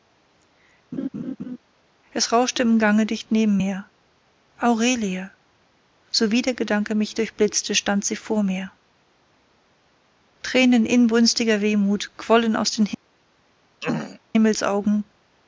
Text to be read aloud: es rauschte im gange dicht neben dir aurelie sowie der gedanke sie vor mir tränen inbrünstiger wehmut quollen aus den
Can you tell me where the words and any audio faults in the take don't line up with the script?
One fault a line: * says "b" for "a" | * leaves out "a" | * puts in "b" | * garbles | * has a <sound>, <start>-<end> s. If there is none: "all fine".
* has a laugh, 0.9-1.6 s
* says "mir" for "dir"
* puts in "mich durchblitzte stand"
* has a throat clearing, 13.8-14.2 s